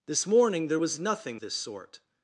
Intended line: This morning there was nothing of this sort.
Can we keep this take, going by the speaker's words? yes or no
no